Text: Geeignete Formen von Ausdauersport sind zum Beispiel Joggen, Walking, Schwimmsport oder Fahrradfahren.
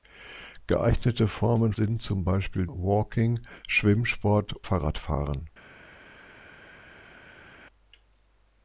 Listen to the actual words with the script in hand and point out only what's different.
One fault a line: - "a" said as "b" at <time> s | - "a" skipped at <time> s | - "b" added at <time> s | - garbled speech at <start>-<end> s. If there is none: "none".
- "von Ausdauersport" skipped at 1.7 s
- "Joggen" skipped at 2.7 s
- "oder" skipped at 4.5 s